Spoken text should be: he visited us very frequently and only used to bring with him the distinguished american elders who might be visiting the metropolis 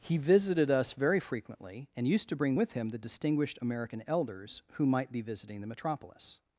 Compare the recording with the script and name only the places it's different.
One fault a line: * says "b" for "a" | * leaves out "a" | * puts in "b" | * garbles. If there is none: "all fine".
* leaves out "only"